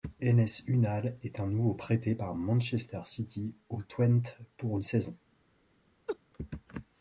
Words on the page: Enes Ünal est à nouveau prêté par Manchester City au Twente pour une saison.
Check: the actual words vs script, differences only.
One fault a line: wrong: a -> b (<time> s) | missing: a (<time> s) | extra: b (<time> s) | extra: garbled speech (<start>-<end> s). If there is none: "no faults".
no faults